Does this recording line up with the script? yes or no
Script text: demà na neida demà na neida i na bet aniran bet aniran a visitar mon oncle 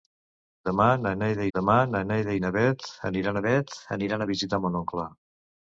yes